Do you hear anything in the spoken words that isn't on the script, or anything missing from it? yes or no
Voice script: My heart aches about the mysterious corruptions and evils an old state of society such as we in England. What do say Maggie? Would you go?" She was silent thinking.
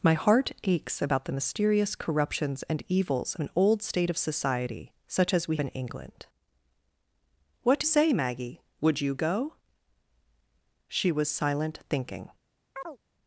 no